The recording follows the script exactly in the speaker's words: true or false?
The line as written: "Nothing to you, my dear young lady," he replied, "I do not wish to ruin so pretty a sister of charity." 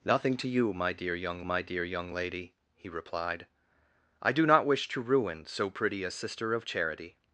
false